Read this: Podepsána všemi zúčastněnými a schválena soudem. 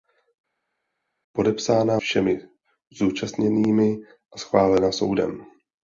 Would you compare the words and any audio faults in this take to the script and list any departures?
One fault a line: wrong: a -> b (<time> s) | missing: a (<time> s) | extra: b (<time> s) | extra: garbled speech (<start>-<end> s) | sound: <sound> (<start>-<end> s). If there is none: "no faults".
no faults